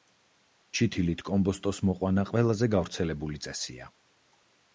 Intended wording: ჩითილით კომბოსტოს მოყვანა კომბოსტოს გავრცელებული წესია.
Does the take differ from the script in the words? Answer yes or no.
yes